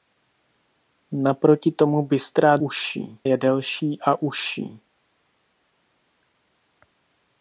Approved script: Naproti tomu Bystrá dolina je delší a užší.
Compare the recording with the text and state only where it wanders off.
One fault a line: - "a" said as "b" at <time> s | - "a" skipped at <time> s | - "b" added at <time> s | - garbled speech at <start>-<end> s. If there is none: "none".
- "dolina" said as "užší" at 2.6 s